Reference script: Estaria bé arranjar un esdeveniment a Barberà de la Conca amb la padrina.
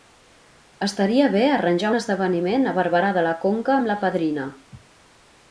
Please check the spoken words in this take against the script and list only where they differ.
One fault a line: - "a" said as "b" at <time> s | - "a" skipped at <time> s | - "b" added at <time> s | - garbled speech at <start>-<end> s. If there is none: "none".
none